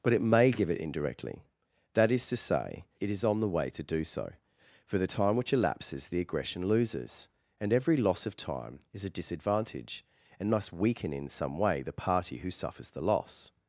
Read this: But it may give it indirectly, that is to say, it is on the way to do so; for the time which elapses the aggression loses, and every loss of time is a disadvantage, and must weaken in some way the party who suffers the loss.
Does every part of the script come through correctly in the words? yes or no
yes